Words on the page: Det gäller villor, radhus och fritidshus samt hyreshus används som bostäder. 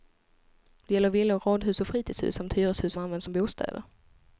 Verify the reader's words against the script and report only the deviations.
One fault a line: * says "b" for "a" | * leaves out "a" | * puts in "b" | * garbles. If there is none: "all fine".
all fine